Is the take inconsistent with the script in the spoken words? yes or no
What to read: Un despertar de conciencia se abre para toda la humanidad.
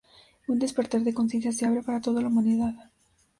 no